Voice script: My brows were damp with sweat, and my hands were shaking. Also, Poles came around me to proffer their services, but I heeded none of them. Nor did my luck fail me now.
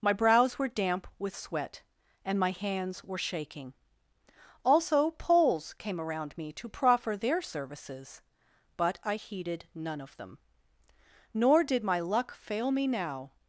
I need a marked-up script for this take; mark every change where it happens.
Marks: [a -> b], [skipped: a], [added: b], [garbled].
My brows were damp with sweat, and my hands were shaking. Also, Poles came around me to proffer their services, but I heeded none of them. Nor did my luck fail me now.